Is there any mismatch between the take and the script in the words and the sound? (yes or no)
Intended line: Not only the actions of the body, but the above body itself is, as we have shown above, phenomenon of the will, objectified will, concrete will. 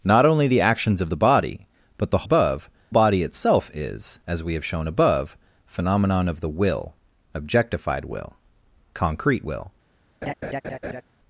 yes